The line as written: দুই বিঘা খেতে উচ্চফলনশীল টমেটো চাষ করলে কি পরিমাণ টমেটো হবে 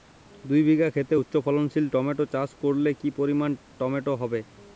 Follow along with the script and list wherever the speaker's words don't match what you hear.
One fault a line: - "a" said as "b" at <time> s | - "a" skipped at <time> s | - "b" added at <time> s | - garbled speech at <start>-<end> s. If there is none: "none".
none